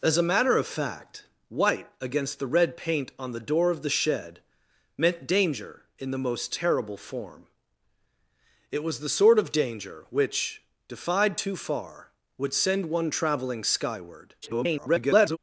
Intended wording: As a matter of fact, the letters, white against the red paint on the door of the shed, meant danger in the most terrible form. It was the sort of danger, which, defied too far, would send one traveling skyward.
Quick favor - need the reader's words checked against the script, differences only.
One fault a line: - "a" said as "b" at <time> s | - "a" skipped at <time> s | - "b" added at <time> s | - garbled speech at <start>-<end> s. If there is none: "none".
- "the letters" skipped at 1.2 s
- garbled speech at 14.4-15.4 s